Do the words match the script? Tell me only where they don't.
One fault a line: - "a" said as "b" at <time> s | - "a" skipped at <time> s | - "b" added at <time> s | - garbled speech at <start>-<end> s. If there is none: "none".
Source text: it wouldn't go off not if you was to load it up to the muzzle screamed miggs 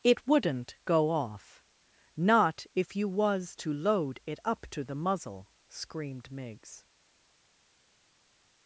none